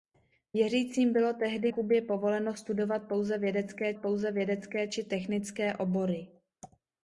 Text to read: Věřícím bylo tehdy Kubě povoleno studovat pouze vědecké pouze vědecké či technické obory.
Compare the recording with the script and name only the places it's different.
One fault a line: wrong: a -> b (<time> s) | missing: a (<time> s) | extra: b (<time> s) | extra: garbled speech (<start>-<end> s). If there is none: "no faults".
no faults